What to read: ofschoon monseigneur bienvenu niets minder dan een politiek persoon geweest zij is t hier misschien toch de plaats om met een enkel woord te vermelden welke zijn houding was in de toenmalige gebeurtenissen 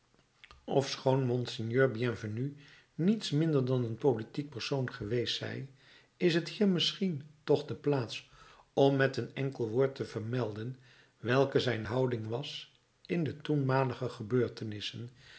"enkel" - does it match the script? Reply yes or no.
yes